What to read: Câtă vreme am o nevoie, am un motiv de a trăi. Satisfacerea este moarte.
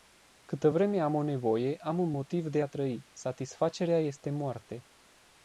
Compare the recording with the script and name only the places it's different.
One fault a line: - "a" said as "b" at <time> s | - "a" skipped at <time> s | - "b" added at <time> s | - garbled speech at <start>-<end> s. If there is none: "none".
none